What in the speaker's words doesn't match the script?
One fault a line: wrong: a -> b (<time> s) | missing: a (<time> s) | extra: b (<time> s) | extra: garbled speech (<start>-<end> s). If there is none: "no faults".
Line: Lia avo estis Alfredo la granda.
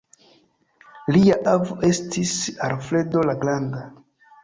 no faults